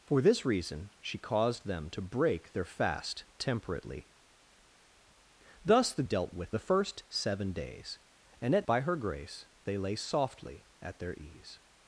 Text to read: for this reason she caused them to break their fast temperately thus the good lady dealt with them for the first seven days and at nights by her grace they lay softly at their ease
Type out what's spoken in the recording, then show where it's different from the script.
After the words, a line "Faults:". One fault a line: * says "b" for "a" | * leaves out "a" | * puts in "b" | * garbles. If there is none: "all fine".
for this reason she caused them to break their fast temperately thus the dealt with the first seven days and at by her grace they lay softly at their ease
Faults:
* leaves out "good lady"
* leaves out "them for"
* leaves out "nights"